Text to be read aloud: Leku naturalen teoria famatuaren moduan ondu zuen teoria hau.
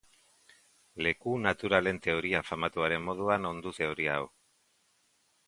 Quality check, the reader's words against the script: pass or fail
fail